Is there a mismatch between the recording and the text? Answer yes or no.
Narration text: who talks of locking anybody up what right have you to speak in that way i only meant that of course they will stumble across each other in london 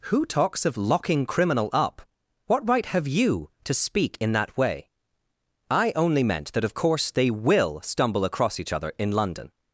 yes